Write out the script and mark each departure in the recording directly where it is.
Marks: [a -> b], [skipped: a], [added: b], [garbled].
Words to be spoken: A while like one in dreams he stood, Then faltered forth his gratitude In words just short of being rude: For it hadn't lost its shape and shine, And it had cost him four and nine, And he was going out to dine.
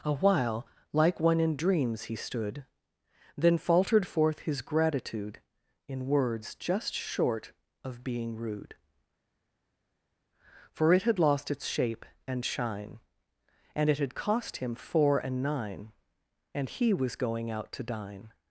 A while like one in dreams he stood, Then faltered forth his gratitude In words just short of being rude: For it [hadn't -> had] lost its shape and shine, And it had cost him four and nine, And he was going out to dine.